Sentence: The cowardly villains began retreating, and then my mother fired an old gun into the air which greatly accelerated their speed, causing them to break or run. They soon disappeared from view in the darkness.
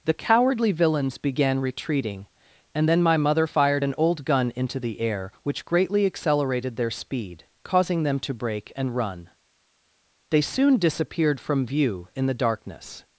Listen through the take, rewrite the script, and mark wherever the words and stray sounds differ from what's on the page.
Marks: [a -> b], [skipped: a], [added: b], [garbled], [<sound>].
The cowardly villains began retreating, and then my mother fired an old gun into the air which greatly accelerated their speed, causing them to break [or -> and] run. They soon disappeared from view in the darkness.